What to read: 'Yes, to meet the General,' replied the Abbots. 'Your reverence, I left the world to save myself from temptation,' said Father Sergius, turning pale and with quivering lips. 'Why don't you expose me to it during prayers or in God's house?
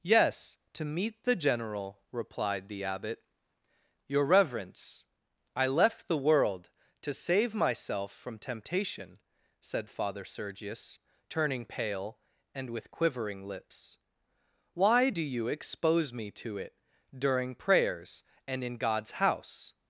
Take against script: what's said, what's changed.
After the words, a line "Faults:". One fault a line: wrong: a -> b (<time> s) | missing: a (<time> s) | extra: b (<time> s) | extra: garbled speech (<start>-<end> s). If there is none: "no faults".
'Yes, to meet the General,' replied the Abbot. 'Your reverence, I left the world to save myself from temptation,' said Father Sergius, turning pale and with quivering lips. 'Why do you expose me to it during prayers and in God's house?
Faults:
wrong: Abbots -> Abbot (2.8 s)
wrong: don't -> do (15.1 s)
wrong: or -> and (18.5 s)